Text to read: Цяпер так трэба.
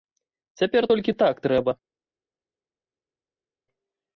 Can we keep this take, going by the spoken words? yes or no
no